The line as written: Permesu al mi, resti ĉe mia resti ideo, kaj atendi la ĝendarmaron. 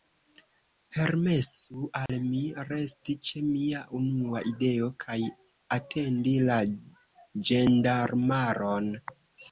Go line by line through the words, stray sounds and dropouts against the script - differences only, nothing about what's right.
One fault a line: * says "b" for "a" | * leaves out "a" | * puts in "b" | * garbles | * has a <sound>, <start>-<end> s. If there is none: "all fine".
* has a dropout, 2.1-2.1 s
* says "unua" for "resti"